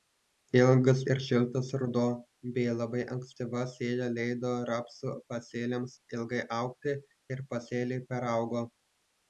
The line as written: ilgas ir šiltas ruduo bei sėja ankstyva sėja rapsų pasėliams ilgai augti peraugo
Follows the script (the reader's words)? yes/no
no